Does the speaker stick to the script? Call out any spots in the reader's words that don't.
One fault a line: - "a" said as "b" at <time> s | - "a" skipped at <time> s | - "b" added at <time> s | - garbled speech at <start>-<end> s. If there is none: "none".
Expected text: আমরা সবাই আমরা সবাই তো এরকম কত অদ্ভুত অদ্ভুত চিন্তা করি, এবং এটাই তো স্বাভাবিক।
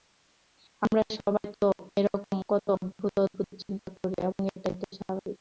- "আমরা সবাই" skipped at 1.5 s